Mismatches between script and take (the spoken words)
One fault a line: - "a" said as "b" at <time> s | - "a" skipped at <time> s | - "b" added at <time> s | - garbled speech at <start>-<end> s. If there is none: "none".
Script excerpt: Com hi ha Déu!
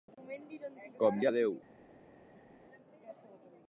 none